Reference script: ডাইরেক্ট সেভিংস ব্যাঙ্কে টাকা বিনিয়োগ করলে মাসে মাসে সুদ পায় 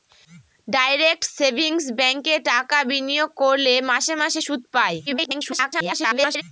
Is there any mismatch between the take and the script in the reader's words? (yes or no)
yes